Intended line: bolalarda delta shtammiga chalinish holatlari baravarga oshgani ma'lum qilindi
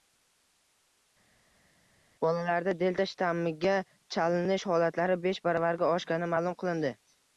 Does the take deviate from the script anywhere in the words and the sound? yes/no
yes